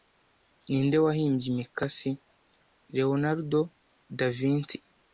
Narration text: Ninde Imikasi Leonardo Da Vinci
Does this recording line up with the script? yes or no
no